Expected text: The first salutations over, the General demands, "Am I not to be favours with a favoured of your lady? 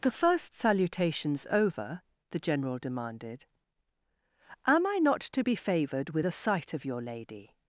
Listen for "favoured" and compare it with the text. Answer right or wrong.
wrong